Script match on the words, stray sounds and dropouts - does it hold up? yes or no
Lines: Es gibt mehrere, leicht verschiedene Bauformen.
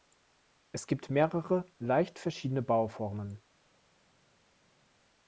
yes